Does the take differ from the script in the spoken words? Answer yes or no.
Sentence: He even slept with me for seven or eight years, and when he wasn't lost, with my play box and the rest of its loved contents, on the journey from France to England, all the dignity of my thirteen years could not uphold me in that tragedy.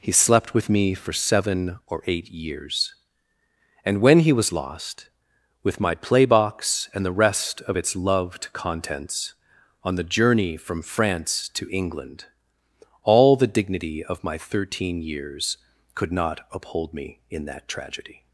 yes